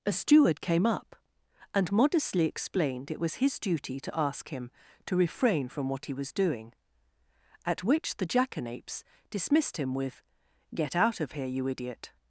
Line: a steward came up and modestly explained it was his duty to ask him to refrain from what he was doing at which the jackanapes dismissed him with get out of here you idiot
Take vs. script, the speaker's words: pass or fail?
pass